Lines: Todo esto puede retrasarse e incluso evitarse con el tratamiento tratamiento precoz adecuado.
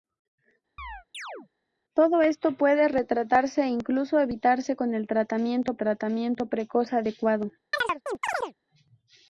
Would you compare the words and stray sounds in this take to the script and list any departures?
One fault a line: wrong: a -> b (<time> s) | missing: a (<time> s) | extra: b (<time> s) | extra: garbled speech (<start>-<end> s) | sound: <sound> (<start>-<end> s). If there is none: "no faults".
sound: chirp (0.8-1.5 s)
sound: chirp (7.7-8.5 s)